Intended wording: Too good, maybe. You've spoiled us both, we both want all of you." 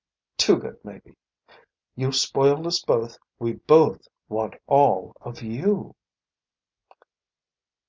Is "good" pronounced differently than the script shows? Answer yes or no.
no